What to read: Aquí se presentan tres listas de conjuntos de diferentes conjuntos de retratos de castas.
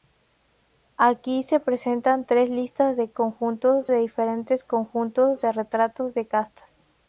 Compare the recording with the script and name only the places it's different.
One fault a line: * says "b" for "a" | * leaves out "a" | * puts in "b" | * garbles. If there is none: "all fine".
all fine